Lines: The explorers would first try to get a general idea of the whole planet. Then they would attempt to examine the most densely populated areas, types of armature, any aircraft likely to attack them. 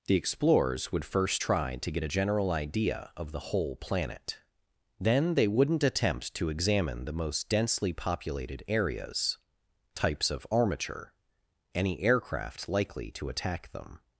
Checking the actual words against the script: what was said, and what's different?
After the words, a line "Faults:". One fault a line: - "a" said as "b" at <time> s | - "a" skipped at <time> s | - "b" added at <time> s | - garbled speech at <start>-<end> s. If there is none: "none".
The explorers would first try to get a general idea of the whole planet. Then they wouldn't attempt to examine the most densely populated areas, types of armature, any aircraft likely to attack them.
Faults:
- "would" said as "wouldn't" at 5.5 s